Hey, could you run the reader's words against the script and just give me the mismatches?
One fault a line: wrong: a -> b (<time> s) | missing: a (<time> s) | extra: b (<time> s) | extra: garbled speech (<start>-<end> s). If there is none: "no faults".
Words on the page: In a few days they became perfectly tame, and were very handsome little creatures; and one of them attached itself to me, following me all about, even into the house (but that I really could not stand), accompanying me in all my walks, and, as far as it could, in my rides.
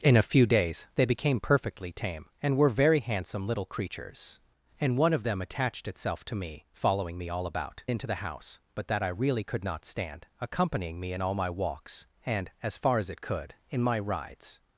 missing: even (7.8 s)